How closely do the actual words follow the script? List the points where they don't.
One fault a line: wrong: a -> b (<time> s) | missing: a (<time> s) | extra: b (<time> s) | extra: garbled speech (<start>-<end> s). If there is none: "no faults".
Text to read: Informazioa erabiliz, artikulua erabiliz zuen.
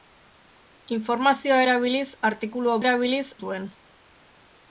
no faults